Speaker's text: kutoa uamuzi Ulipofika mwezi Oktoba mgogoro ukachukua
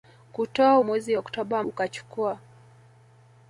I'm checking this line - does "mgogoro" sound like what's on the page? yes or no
no